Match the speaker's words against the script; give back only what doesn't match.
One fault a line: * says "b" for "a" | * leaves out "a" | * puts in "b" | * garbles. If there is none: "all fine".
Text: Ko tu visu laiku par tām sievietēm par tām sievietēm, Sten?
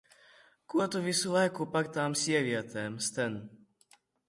* leaves out "par tām sievietēm"